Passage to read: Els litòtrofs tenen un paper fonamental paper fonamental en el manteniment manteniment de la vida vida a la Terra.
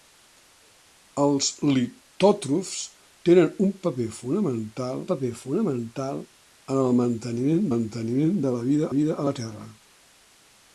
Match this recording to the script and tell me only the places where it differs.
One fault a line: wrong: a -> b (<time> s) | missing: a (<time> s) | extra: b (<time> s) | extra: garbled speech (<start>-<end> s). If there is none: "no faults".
no faults